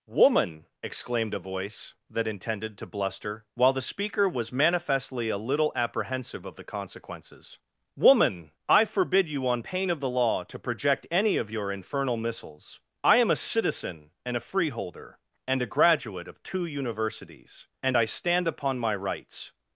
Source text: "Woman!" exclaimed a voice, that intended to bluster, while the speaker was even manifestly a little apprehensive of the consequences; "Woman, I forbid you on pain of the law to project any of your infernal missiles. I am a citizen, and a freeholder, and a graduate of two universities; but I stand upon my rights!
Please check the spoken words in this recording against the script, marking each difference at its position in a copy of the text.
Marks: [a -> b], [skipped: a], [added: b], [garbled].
"Woman!" exclaimed a voice, that intended to bluster, while the speaker was [skipped: even] manifestly a little apprehensive of the consequences; "Woman, I forbid you on pain of the law to project any of your infernal missiles. I am a citizen, and a freeholder, and a graduate of two universities; [but -> and] I stand upon my rights!